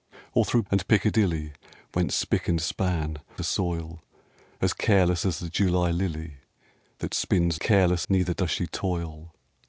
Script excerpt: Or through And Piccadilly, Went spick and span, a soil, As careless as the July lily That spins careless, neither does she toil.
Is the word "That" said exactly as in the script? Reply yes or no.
yes